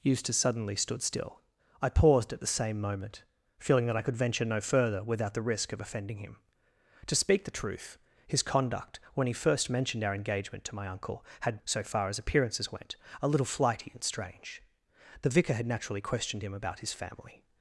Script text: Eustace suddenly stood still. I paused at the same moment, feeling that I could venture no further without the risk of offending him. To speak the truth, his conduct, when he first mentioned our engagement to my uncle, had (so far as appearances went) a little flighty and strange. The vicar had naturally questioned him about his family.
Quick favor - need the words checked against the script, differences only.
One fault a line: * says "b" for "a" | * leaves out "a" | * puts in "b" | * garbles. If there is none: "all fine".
all fine